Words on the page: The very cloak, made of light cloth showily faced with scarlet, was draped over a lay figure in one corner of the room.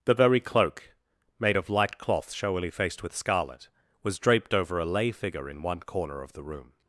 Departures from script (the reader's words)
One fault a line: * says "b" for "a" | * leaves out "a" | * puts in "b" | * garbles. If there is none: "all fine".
all fine